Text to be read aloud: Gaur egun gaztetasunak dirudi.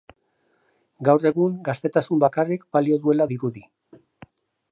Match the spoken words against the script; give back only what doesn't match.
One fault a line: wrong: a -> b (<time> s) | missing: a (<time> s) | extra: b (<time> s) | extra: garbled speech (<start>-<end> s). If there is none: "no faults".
extra: bakarrik balio duela (2.2 s)